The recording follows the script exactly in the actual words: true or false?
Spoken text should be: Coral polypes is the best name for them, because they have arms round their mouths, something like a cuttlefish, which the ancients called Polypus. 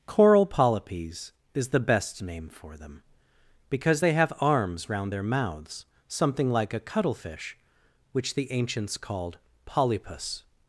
true